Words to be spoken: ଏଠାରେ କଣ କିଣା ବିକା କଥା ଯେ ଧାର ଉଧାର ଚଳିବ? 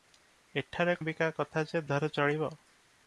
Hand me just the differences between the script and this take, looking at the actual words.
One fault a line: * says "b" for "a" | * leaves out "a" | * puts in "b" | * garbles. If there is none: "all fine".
* leaves out "କଣ କିଣା"
* leaves out "ଧାର"